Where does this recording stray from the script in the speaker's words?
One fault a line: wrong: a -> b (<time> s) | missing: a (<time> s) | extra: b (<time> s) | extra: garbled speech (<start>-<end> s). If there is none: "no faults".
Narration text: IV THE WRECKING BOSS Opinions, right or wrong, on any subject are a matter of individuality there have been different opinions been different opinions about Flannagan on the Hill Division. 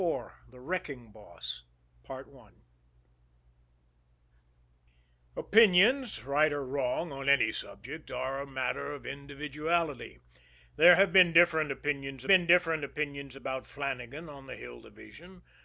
no faults